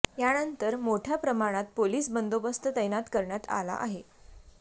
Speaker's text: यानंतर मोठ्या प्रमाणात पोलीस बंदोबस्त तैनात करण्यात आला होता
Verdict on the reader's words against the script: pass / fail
fail